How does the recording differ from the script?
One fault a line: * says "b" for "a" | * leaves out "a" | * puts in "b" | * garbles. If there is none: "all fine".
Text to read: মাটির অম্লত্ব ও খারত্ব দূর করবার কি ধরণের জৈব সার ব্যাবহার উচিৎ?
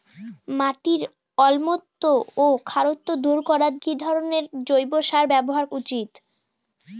all fine